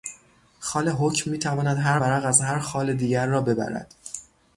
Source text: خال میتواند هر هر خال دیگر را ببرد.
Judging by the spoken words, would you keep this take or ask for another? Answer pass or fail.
fail